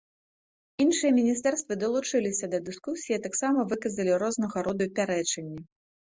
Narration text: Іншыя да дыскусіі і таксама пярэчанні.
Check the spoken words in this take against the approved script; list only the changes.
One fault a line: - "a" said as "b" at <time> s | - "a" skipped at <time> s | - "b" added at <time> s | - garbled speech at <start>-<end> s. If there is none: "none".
- "міністэрствы далучыліся" added at 1.2 s
- "выказалі рознага роду" added at 3.7 s